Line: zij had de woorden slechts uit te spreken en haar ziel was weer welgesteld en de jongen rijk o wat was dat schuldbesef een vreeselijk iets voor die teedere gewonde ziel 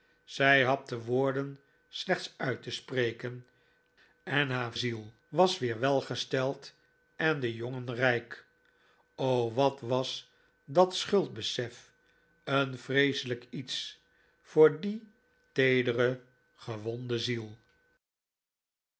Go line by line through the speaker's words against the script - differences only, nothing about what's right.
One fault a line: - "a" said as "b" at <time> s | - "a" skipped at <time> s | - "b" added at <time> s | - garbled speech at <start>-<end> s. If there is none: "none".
none